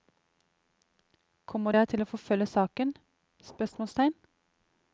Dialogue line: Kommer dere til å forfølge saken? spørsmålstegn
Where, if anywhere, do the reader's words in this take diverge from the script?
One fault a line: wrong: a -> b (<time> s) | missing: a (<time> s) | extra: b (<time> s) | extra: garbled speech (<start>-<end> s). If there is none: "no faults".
no faults